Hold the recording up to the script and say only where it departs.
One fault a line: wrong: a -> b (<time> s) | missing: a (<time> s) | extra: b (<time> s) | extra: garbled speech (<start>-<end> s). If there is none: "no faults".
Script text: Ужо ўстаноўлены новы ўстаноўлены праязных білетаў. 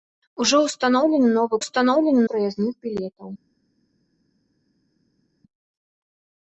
no faults